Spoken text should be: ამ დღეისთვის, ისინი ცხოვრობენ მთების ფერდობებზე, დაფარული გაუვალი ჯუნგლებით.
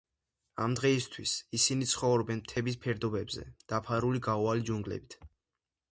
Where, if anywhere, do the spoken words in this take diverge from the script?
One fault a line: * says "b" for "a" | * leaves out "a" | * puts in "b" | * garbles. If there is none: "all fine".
all fine